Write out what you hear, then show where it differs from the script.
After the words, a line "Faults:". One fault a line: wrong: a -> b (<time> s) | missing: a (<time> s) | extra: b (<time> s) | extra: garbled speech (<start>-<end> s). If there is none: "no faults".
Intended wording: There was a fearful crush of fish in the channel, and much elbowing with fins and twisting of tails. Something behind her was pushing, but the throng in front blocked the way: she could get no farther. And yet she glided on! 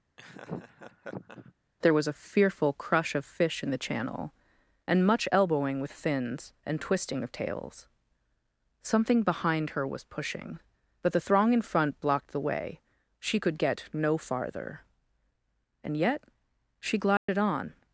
There was a fearful crush of fish in the channel, and much elbowing with fins and twisting of tails. Something behind her was pushing, but the throng in front blocked the way: she could get no farther. And yet she glided on!
Faults:
no faults